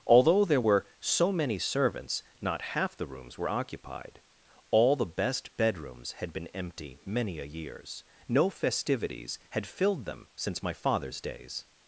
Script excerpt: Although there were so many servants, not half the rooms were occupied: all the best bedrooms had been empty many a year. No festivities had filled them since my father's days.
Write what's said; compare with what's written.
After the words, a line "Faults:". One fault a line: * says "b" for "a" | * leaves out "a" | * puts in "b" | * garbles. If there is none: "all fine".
Although there were so many servants, not half the rooms were occupied: all the best bedrooms had been empty many a years. No festivities had filled them since my father's days.
Faults:
* says "years" for "year"